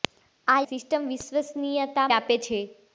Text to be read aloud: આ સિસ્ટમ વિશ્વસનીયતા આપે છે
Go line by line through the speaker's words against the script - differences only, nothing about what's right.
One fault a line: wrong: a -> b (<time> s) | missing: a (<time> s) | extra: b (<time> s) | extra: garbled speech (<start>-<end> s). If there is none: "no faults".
no faults